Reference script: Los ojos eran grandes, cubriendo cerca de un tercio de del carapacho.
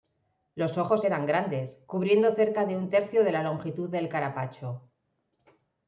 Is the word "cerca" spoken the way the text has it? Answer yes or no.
yes